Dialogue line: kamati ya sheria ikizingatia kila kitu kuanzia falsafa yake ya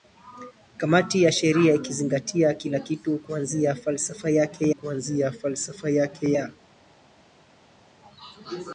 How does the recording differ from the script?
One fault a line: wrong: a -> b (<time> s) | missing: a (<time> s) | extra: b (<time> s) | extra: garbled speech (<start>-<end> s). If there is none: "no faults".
extra: kuanzia falsafa yake (4.7 s)